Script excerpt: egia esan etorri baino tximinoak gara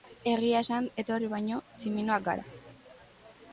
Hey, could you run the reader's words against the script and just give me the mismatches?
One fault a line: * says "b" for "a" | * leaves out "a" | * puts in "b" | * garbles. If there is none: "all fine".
all fine